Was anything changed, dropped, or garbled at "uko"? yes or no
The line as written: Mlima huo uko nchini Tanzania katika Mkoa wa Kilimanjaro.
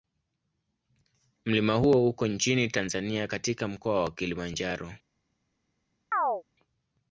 no